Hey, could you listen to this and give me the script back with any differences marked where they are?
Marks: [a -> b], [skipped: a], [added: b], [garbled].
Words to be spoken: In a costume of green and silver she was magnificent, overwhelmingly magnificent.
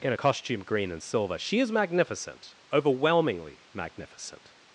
In a costume [skipped: of] green and silver she [was -> is] magnificent, overwhelmingly magnificent.